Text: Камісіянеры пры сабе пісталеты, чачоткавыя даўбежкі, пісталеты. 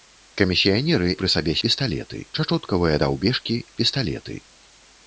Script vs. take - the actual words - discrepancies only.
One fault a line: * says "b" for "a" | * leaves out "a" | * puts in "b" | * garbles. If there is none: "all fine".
all fine